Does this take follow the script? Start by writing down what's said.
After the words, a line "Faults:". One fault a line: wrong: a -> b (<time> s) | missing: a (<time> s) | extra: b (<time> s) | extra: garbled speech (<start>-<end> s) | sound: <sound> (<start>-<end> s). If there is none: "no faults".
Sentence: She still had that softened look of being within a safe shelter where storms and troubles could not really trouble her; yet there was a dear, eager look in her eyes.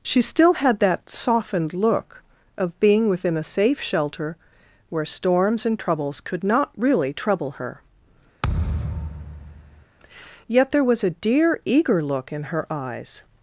She still had that softened look of being within a safe shelter where storms and troubles could not really trouble her; yet there was a dear, eager look in her eyes.
Faults:
sound: thud (8.4-9.9 s)